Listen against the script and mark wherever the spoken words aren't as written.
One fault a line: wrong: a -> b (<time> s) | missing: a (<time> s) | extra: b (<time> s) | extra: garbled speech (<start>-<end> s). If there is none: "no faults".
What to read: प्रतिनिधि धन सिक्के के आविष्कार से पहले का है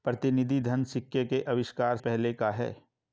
missing: से (2.0 s)